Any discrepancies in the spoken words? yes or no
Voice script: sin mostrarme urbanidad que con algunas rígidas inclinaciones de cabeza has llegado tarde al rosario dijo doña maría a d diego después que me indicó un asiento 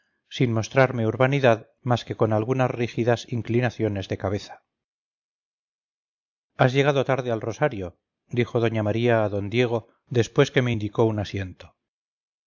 yes